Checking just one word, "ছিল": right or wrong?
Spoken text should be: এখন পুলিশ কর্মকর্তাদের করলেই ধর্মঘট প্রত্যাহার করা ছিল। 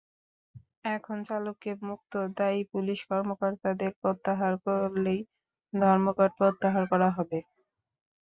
wrong